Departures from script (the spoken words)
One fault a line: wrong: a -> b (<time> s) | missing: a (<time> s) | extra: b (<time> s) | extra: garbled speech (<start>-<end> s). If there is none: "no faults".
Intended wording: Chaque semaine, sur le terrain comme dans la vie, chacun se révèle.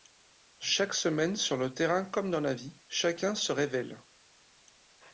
no faults